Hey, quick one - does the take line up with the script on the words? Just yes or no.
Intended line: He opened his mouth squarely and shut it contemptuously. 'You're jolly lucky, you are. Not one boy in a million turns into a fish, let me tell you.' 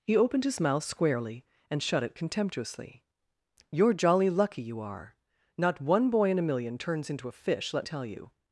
no